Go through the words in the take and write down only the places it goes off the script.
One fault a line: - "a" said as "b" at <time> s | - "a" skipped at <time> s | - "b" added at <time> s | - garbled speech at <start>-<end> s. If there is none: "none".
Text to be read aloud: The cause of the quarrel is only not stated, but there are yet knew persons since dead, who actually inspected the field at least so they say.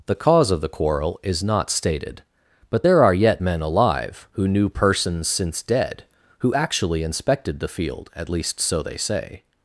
- "only" skipped at 1.4 s
- "men alive who" added at 3.4 s